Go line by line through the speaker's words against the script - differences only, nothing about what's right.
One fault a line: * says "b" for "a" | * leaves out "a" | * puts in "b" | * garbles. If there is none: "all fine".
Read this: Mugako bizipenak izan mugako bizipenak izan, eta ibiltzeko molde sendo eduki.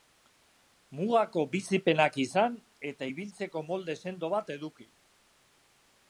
* leaves out "mugako bizipenak izan"
* puts in "bat"